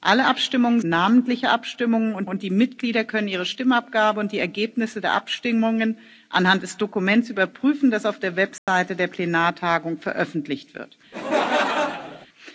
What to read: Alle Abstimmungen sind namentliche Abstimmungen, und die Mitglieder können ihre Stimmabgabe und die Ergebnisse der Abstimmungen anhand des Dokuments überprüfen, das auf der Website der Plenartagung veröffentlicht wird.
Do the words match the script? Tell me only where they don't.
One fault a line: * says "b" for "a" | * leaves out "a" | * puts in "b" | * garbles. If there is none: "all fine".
* leaves out "sind"
* puts in "und"